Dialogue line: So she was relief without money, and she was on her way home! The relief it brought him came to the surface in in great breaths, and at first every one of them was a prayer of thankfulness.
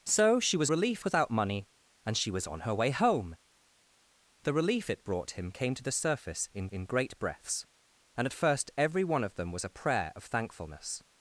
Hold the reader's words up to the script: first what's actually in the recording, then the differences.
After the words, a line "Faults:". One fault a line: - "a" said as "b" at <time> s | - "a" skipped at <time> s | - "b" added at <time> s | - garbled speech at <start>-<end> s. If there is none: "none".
So she was relief without money, and she was on her way home! The relief it brought him came to the surface in in great breaths, and at first every one of them was a prayer of thankfulness.
Faults:
none